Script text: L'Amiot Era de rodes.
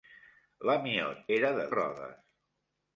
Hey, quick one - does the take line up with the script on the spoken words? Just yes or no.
yes